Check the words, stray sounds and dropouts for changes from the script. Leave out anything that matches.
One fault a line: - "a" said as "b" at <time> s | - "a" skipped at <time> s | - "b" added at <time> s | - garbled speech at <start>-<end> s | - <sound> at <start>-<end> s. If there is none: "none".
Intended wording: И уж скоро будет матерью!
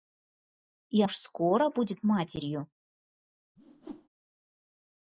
- whoosh at 3.6-4.1 s